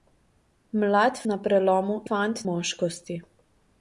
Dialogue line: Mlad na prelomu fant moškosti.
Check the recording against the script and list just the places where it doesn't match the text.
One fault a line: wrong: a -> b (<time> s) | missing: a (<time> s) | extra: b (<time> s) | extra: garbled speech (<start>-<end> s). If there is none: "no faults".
no faults